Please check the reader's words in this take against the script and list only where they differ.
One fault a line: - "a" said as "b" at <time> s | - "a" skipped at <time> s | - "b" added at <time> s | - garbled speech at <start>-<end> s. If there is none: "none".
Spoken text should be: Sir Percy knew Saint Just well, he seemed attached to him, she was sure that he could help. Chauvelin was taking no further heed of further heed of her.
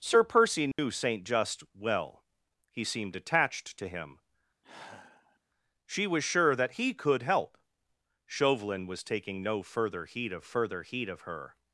none